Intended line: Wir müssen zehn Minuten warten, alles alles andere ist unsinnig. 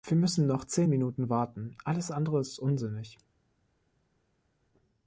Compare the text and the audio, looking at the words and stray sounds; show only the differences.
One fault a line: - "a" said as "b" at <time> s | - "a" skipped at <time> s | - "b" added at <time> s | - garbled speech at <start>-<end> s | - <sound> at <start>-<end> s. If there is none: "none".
- "noch" added at 0.5 s
- "alles" skipped at 2.1 s